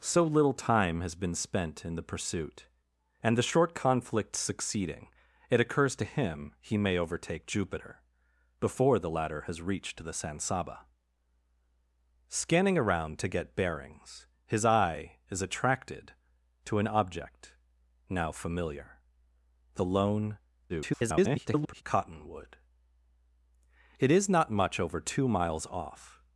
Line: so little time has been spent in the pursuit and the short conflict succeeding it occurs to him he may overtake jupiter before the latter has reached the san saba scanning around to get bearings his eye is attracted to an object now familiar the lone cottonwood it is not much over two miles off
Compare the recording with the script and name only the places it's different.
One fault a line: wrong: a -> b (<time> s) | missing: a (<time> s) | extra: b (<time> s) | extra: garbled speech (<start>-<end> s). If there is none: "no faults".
extra: garbled speech (20.7-21.8 s)